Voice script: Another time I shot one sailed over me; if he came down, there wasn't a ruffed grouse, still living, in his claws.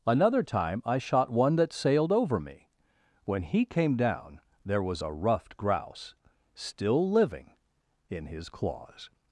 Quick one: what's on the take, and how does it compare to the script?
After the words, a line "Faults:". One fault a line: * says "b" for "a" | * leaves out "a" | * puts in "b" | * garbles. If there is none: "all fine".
Another time I shot one that sailed over me; when he came down, there was a ruffed grouse, still living, in his claws.
Faults:
* puts in "that"
* says "when" for "if"
* says "was" for "wasn't"